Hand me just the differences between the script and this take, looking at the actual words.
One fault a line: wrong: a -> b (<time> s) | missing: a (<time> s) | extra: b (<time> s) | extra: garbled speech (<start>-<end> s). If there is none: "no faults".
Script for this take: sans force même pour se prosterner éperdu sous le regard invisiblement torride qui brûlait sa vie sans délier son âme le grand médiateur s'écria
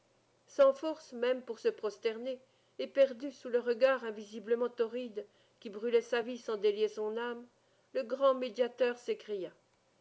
no faults